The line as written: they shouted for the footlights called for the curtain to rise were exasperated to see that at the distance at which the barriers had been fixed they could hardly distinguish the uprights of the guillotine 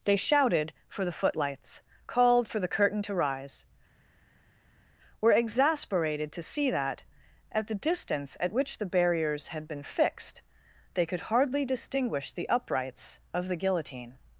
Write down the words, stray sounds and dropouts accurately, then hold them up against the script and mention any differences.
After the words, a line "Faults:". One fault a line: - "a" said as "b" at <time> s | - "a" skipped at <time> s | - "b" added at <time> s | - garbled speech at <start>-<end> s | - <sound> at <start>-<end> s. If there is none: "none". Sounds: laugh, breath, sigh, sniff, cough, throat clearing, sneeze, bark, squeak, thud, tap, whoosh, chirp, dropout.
they shouted for the footlights called for the curtain to rise were exasperated to see that at the distance at which the barriers had been fixed they could hardly distinguish the uprights of the guillotine
Faults:
none